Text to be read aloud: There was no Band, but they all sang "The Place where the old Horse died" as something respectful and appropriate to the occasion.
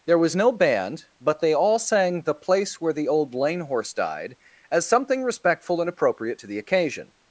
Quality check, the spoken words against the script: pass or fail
fail